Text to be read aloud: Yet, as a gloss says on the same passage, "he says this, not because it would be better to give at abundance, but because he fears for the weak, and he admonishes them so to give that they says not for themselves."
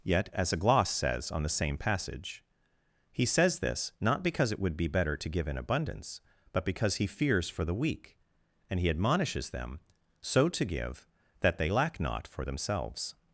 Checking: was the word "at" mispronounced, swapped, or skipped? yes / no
yes